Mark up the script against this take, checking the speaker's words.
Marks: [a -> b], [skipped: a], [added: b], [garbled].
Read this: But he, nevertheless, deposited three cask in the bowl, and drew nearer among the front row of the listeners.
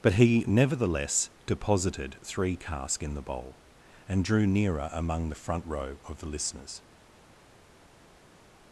But he, nevertheless, deposited three cask in the bowl, and drew nearer among the front row of the listeners.